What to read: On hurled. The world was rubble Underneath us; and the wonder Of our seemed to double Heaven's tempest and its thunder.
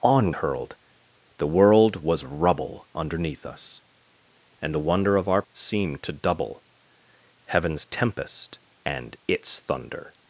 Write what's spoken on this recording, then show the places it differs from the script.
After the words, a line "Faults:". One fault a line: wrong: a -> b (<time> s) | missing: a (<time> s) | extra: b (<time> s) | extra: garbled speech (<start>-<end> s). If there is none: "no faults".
On hurled. The world was rubble Underneath us; and the wonder Of our seemed to double Heaven's tempest and its thunder.
Faults:
no faults